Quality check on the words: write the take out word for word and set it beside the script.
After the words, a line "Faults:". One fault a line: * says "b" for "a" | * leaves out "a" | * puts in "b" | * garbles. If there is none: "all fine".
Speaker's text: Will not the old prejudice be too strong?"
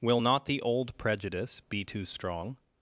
Will not the old prejudice be too strong?"
Faults:
all fine